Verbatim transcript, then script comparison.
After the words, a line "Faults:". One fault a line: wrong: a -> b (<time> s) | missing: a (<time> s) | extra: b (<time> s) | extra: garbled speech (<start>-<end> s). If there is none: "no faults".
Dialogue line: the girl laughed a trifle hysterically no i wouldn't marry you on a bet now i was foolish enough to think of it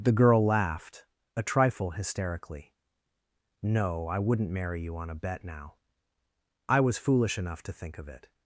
the girl laughed a trifle hysterically no i wouldn't marry you on a bet now i was foolish enough to think of it
Faults:
no faults